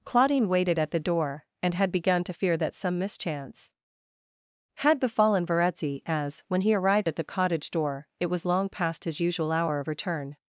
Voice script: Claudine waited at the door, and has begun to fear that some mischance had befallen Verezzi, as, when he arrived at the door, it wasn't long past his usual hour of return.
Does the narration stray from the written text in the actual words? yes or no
yes